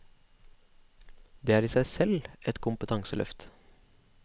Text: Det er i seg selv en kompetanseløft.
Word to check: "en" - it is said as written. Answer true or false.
false